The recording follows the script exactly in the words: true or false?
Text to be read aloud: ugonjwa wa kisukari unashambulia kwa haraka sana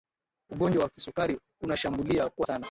false